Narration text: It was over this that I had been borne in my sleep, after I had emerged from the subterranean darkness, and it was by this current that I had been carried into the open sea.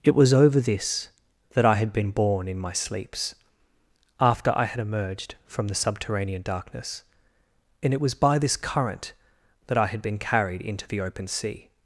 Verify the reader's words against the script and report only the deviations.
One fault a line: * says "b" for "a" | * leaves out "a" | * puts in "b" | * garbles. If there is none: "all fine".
* says "sleeps" for "sleep"